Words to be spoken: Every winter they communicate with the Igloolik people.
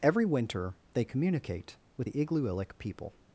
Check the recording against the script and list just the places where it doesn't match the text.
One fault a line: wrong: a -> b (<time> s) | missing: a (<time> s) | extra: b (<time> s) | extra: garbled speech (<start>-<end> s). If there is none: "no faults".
no faults